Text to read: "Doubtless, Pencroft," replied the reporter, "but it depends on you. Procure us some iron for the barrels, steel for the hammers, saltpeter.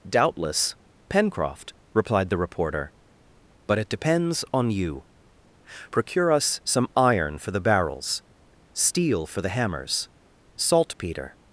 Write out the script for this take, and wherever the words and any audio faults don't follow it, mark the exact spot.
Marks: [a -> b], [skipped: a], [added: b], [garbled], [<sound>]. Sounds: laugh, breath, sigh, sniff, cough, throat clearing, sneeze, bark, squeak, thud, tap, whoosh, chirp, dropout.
"Doubtless, Pencroft," replied the reporter, "but it depends on you. Procure us some iron for the barrels, steel for the hammers, saltpeter.